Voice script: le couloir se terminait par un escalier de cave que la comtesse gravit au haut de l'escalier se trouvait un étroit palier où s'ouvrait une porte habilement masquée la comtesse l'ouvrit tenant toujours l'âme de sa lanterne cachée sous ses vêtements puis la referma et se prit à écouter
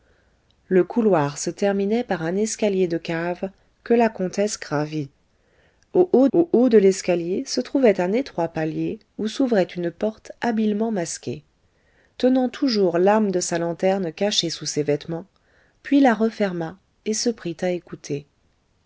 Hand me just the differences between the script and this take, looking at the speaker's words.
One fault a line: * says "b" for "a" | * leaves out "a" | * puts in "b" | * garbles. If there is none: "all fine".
* puts in "au haut"
* leaves out "la comtesse l'ouvrit"